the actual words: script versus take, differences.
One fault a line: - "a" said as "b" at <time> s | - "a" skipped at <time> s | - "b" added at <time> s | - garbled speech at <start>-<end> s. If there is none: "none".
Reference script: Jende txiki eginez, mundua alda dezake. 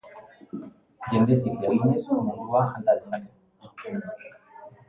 none